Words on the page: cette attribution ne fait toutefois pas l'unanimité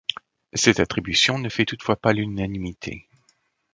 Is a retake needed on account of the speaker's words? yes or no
no